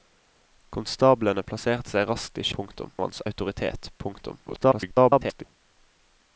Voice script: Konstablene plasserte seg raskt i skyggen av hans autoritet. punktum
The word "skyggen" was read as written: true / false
false